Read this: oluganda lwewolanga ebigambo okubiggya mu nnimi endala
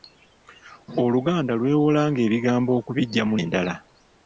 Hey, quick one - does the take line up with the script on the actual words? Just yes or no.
no